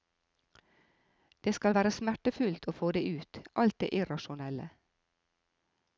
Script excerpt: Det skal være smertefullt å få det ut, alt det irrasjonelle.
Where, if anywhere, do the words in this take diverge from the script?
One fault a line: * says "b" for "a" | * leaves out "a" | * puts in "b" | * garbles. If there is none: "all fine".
all fine